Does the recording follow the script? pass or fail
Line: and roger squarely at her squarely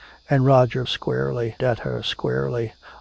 pass